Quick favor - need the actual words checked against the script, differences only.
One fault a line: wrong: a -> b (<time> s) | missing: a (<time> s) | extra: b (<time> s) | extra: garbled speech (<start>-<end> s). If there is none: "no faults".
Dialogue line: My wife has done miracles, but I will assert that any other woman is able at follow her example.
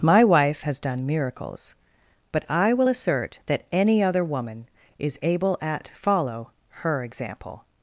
no faults